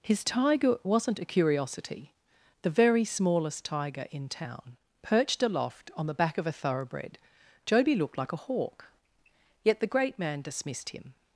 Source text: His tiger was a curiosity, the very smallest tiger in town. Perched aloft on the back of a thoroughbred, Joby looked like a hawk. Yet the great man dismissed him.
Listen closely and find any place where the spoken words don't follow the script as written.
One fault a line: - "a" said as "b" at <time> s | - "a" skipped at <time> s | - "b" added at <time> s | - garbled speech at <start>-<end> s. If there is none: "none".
- "was" said as "wasn't" at 0.8 s